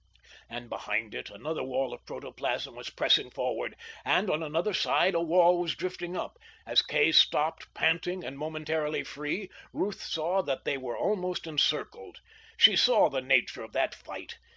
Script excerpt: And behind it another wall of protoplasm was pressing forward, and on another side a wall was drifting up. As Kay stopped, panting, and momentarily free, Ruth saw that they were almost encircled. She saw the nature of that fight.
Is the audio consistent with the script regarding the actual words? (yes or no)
yes